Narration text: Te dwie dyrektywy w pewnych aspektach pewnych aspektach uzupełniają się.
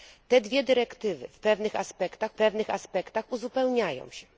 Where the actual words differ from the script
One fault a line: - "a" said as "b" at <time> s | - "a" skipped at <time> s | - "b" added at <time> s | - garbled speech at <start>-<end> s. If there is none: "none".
none